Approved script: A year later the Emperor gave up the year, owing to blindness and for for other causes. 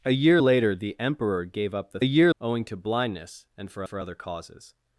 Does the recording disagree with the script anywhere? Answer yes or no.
no